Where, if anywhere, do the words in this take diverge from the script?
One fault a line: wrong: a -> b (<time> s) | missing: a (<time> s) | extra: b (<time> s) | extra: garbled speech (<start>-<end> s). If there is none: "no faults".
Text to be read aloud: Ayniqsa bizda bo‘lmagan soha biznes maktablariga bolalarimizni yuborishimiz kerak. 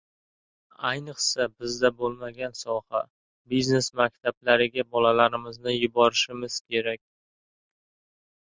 no faults